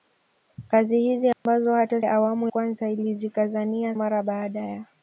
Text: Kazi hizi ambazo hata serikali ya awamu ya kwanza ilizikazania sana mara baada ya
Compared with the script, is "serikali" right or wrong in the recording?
wrong